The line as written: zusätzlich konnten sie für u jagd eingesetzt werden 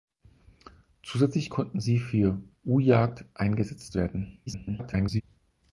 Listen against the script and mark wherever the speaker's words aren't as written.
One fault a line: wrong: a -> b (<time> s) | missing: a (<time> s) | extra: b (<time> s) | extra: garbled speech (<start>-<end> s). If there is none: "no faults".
extra: garbled speech (4.5-5.2 s)